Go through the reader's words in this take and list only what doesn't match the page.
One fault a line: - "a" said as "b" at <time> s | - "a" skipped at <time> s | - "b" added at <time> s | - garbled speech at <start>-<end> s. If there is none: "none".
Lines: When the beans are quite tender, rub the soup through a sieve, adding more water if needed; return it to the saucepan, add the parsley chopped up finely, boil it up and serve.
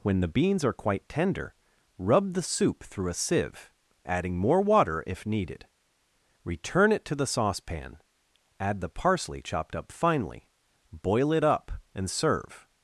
none